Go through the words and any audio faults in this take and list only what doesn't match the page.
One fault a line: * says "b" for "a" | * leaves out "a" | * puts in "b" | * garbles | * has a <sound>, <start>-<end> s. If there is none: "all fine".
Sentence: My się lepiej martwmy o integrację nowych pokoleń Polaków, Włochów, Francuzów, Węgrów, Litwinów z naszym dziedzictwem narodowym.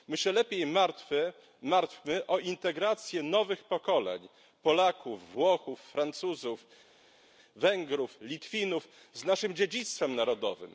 all fine